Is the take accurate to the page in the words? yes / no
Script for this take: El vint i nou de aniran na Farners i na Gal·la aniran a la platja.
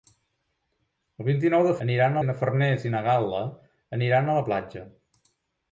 yes